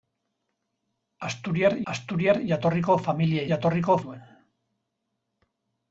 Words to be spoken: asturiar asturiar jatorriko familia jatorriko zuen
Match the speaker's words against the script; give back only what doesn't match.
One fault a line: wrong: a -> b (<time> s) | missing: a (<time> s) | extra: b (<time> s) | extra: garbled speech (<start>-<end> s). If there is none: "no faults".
no faults